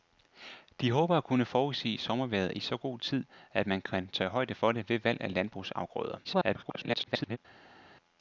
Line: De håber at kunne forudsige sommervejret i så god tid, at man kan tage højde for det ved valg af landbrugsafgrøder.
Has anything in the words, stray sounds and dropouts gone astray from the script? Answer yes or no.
yes